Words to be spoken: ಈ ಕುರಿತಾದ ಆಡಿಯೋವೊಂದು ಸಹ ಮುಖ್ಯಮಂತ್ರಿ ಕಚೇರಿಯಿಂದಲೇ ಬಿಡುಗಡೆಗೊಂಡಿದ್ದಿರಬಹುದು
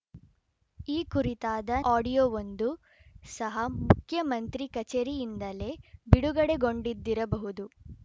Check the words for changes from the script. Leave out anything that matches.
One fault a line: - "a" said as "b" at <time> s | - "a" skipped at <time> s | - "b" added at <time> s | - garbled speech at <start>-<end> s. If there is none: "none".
none